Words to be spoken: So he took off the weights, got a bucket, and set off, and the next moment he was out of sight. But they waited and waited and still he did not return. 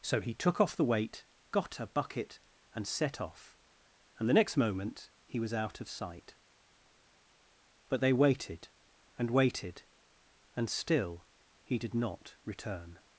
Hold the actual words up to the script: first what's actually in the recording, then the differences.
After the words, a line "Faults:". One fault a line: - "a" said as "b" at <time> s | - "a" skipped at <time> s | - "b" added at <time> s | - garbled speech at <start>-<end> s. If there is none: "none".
So he took off the weight, got a bucket, and set off, and the next moment he was out of sight. But they waited and waited and still he did not return.
Faults:
- "weights" said as "weight" at 0.8 s